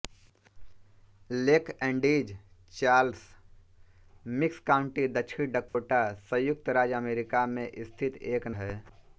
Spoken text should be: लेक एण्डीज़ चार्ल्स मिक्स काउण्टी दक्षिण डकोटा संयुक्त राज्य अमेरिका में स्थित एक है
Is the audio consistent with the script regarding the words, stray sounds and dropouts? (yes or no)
no